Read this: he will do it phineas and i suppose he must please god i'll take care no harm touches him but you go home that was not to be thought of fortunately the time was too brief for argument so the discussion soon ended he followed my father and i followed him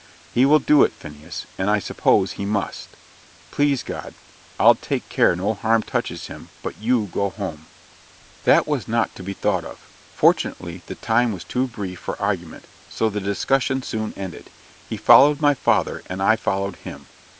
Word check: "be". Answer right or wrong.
right